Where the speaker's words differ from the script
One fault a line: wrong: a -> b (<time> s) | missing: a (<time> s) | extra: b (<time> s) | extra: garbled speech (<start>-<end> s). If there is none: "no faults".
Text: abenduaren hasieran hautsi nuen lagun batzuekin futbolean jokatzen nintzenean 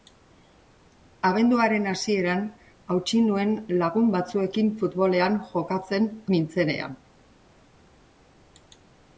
no faults